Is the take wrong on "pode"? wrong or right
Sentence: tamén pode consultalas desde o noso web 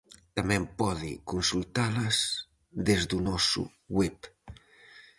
right